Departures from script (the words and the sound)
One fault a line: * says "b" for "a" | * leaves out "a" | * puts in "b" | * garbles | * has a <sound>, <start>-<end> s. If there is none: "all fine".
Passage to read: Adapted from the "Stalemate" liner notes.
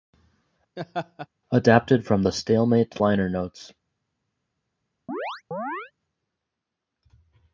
* has a laugh, 0.8-1.3 s
* has a chirp, 5.1-5.9 s